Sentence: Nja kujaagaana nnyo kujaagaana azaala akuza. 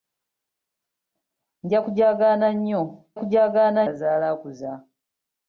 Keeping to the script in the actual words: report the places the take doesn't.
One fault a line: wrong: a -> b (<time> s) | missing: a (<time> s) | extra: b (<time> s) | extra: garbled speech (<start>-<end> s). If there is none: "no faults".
no faults